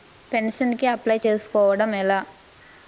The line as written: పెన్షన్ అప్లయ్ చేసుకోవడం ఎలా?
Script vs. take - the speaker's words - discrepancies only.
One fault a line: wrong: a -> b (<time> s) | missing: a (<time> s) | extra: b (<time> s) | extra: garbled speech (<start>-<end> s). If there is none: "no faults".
extra: కి (0.8 s)